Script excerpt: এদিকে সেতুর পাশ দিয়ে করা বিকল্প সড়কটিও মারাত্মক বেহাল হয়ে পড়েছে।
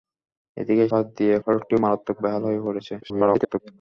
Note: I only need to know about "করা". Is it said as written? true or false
false